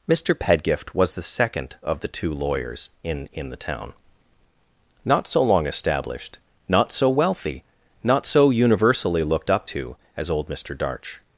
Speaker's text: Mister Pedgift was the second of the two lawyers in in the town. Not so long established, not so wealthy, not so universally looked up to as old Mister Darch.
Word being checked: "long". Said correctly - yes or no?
yes